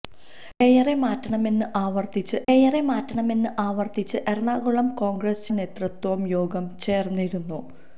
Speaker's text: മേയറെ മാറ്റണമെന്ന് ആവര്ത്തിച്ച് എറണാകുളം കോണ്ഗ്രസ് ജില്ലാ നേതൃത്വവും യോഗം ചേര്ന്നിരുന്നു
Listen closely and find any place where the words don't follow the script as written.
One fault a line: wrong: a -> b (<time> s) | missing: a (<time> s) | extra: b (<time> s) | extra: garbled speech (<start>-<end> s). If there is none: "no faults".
extra: മേയറെ മാറ്റണമെന്ന് ആവര്ത്തിച്ച് (2.5 s)
missing: ജില്ലാ (5.5 s)